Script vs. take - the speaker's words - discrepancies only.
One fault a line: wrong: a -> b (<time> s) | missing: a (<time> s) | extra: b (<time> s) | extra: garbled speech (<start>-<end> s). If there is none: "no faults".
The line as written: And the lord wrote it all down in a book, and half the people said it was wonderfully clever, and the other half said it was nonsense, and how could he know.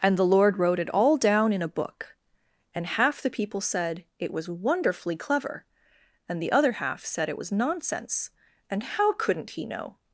wrong: could -> couldn't (9.1 s)